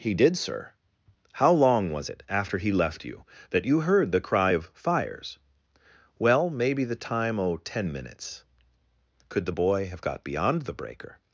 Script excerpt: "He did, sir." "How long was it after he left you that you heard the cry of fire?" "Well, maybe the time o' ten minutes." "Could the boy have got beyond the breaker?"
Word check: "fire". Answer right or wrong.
wrong